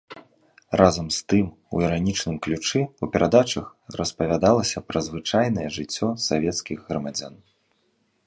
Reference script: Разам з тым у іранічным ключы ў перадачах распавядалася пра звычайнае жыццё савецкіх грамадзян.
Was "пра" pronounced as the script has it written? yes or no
yes